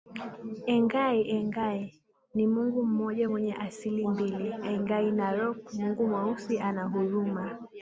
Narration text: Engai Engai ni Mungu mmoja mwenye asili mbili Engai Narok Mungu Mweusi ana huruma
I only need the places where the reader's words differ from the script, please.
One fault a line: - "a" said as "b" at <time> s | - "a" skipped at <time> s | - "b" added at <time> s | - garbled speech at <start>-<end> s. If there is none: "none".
none